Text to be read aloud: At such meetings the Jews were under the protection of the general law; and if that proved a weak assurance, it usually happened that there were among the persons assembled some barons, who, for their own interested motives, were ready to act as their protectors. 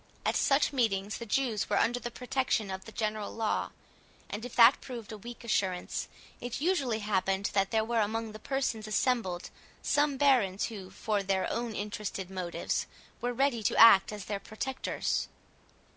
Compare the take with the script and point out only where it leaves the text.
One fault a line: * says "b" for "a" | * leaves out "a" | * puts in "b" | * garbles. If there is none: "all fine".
all fine